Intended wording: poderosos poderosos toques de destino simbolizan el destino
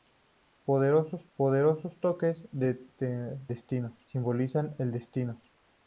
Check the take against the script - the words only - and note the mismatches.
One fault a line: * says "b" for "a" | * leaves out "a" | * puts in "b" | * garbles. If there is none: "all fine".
all fine